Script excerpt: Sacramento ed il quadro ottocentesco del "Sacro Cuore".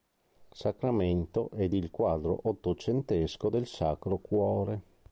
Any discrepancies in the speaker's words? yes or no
no